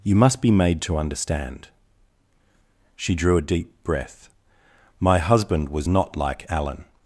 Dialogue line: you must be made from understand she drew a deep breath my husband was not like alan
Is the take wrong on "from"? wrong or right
wrong